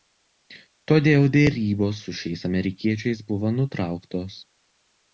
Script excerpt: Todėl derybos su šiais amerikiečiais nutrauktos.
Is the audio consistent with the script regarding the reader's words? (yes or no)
no